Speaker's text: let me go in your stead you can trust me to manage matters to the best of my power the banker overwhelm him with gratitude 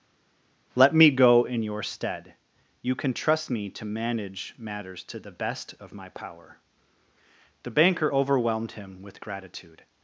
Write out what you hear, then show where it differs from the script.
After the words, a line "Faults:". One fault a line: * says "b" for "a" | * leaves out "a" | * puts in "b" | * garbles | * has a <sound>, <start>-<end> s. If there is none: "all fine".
let me go in your stead you can trust me to manage matters to the best of my power the banker overwhelmed him with gratitude
Faults:
* says "overwhelmed" for "overwhelm"